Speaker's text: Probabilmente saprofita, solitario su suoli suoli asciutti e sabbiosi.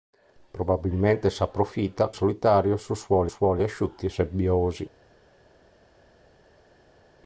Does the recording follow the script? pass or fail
pass